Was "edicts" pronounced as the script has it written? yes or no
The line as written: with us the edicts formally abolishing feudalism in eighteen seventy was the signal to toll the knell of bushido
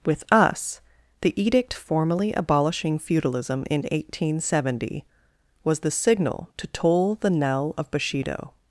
no